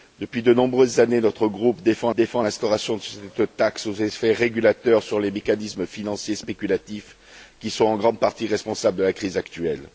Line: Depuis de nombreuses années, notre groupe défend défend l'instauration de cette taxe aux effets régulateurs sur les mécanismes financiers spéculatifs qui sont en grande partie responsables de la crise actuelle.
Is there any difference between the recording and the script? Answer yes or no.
no